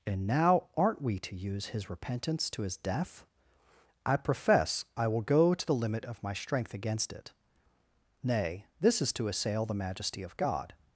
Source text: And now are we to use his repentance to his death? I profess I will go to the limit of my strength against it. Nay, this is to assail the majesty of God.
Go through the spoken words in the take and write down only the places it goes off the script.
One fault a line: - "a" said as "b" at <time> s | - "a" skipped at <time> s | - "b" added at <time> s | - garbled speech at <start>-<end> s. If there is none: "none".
- "are" said as "aren't" at 0.8 s